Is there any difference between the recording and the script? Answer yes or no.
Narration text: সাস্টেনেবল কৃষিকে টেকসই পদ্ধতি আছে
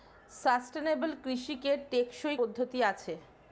no